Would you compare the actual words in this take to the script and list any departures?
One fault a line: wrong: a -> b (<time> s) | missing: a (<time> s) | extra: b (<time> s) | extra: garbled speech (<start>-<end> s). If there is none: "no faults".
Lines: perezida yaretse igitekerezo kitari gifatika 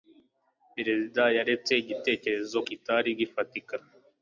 no faults